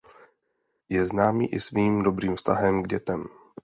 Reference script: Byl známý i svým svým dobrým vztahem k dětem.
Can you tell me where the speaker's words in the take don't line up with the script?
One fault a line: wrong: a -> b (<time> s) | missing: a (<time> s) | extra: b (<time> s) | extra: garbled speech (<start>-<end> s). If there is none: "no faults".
wrong: Byl -> Je (0.9 s)
missing: svým (2.0 s)